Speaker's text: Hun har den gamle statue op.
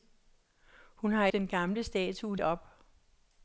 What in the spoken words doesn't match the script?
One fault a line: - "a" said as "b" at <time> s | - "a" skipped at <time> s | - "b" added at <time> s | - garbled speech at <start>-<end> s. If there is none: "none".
none